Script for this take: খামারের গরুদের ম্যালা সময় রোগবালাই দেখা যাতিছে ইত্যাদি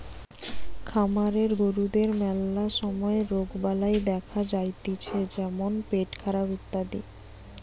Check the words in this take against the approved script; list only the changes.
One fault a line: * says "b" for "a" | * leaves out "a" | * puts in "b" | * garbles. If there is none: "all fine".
* puts in "যেমন পেটখারাপ"